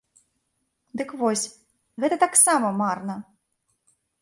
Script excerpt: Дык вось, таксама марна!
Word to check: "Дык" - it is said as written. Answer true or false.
true